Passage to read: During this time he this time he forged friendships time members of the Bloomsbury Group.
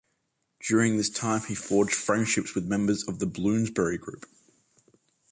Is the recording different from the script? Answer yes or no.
yes